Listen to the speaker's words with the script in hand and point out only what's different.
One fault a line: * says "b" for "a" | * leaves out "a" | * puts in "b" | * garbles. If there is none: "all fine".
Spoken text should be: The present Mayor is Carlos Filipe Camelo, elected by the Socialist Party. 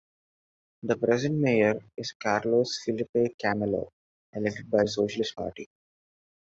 all fine